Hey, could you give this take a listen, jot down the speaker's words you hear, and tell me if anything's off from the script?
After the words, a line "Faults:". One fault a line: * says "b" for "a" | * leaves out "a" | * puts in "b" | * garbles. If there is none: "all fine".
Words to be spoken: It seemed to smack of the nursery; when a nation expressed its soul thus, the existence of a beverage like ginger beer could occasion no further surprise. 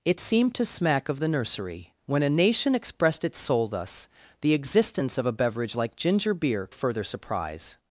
It seemed to smack of the nursery; when a nation expressed its soul thus, the existence of a beverage like ginger beer further surprise.
Faults:
* leaves out "could occasion no"